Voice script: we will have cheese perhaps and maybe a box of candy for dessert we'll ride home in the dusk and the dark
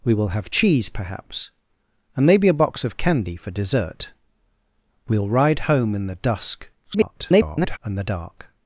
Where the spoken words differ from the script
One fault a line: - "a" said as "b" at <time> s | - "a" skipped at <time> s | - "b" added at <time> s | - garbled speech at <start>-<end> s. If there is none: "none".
- garbled speech at 6.8-7.8 s